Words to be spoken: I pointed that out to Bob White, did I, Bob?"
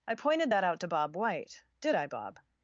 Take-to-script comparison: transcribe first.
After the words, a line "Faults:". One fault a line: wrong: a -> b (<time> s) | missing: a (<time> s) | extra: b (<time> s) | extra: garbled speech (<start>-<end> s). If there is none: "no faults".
I pointed that out to Bob White, did I, Bob?"
Faults:
no faults